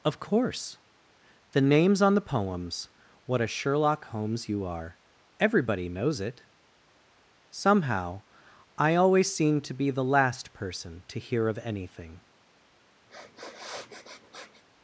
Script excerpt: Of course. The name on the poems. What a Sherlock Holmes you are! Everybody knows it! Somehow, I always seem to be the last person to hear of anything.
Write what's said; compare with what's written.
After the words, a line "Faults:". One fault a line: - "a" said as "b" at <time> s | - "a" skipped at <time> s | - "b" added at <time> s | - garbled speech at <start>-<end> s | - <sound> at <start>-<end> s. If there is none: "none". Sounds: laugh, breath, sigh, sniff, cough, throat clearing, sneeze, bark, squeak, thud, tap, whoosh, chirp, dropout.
Of course. The names on the poems. What a Sherlock Holmes you are! Everybody knows it! Somehow, I always seem to be the last person to hear of anything.
Faults:
- "name" said as "names" at 1.6 s
- sniff at 13.1-14.6 s